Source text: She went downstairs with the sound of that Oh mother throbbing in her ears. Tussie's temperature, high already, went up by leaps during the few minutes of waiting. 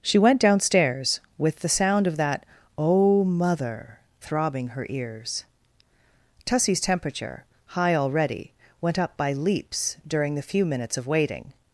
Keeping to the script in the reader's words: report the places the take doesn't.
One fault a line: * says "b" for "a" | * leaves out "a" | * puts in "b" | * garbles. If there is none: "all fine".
* leaves out "in"